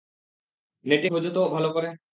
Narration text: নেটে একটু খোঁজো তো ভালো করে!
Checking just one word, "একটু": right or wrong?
wrong